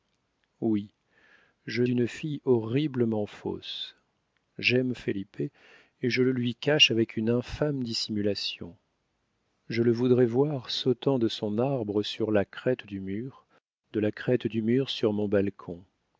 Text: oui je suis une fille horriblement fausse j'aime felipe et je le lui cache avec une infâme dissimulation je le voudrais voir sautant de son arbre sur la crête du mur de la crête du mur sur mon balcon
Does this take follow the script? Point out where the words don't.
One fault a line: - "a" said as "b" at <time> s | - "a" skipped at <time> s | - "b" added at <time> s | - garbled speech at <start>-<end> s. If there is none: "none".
- "suis" skipped at 1.8 s